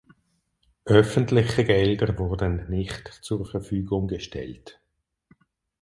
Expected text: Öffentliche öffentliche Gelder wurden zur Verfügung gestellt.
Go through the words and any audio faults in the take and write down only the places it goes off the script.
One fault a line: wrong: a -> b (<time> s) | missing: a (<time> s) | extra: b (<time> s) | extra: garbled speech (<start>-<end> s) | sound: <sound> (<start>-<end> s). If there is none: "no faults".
missing: öffentliche (1.6 s)
extra: nicht (2.7 s)